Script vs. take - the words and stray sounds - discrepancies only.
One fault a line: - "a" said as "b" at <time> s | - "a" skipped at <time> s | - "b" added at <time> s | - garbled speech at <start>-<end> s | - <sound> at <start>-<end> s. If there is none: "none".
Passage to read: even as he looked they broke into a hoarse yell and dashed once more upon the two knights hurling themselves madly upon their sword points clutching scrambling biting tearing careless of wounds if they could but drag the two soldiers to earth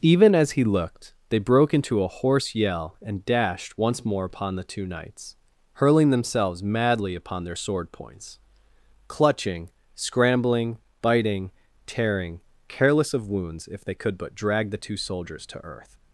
none